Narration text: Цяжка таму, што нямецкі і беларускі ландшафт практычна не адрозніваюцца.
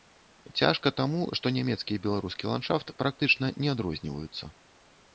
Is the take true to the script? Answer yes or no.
yes